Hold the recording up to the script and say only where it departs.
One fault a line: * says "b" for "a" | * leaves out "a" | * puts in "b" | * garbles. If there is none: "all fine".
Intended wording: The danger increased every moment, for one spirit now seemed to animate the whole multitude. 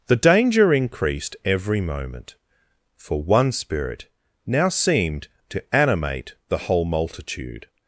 all fine